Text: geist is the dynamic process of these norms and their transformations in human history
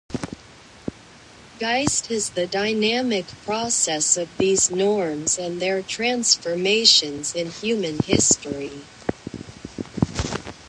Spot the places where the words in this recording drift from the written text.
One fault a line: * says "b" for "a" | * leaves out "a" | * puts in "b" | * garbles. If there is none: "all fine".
all fine